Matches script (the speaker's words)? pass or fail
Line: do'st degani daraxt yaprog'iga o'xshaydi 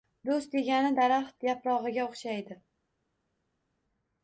pass